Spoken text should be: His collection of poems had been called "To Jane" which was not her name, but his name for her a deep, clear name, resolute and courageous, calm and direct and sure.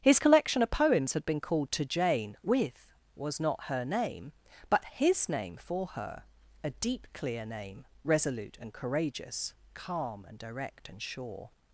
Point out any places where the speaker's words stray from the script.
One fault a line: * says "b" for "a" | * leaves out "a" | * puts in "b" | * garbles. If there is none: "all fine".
* says "with" for "which"